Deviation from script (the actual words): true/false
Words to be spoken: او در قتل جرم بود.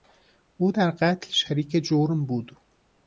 true